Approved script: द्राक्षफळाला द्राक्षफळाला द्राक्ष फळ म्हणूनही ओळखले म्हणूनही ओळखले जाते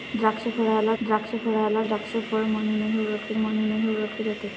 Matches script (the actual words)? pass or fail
pass